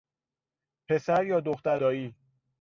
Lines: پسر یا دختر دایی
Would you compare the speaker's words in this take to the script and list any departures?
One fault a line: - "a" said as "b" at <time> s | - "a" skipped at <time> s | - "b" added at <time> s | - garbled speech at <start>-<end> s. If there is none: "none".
none